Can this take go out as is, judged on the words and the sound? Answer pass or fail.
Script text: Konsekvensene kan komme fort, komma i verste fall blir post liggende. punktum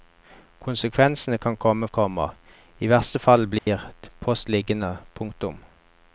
fail